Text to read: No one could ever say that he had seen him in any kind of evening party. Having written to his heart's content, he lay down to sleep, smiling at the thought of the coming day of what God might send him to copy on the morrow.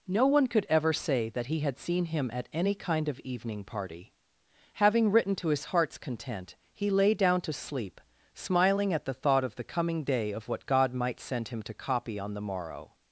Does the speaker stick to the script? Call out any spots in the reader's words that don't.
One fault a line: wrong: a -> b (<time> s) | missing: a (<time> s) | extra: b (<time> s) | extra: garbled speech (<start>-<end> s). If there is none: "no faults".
wrong: in -> at (2.3 s)